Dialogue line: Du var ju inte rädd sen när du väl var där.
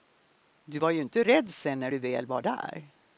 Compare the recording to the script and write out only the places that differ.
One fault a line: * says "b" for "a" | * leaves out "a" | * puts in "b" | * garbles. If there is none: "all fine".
all fine